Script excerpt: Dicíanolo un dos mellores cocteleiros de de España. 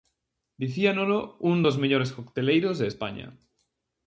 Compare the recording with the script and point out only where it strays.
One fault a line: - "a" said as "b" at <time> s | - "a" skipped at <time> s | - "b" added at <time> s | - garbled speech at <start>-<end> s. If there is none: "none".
- "de" skipped at 2.9 s